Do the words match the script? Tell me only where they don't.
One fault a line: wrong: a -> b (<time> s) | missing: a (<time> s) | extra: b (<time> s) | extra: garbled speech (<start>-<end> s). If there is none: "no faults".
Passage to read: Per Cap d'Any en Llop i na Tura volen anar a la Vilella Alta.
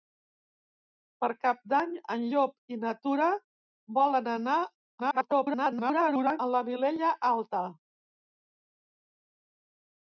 extra: garbled speech (5.0-6.4 s)